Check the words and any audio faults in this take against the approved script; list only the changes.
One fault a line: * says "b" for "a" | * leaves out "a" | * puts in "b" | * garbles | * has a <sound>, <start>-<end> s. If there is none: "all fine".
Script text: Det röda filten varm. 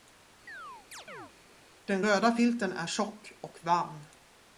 * has a chirp, 0.5-1.3 s
* says "Den" for "Det"
* puts in "är tjock och"